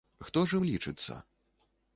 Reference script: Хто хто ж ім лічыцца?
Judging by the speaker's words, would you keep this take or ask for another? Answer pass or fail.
fail